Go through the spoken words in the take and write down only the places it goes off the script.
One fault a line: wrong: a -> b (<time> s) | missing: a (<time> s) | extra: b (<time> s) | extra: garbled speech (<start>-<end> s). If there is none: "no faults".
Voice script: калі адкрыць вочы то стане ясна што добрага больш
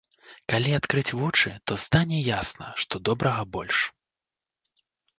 no faults